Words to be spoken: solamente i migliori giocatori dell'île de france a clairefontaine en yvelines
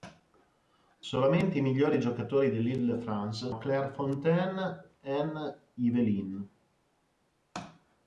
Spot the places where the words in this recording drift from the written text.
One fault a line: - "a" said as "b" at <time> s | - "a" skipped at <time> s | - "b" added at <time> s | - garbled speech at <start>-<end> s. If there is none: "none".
none